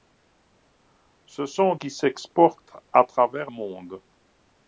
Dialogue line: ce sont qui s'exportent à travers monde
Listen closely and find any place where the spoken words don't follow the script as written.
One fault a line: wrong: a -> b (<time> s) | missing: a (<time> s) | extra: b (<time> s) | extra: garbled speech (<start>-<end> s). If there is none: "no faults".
no faults